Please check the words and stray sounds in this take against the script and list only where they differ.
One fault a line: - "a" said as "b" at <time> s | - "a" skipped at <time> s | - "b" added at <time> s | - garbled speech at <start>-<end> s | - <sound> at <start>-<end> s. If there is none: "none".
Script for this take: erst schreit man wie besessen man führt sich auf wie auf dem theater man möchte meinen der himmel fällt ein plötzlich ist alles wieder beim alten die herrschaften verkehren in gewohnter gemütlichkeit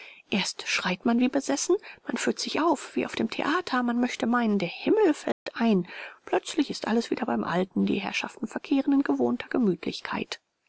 - dropout at 5.3-5.5 s